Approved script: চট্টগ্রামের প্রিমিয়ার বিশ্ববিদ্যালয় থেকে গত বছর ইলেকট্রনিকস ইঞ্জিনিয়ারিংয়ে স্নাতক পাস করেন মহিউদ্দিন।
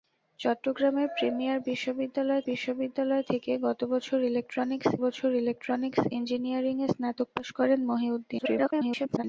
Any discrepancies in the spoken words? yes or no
yes